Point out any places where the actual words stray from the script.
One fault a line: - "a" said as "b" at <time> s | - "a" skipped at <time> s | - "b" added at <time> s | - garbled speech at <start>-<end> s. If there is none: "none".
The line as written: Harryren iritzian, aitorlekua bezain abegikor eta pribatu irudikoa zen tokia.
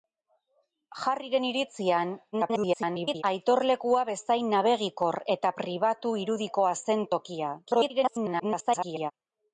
- garbled speech at 2.3-3.2 s
- garbled speech at 7.7-9.1 s